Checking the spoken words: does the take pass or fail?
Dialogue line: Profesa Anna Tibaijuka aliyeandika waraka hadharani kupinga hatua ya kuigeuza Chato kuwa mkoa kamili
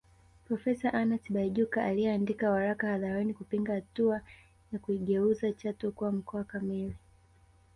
pass